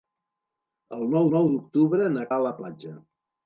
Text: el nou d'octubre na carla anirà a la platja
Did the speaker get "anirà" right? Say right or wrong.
wrong